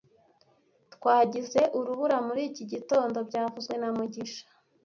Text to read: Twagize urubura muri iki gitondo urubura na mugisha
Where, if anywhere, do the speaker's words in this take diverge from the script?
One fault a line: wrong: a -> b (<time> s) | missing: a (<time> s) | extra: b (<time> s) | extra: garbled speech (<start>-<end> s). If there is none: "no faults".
wrong: urubura -> byavuzwe (3.3 s)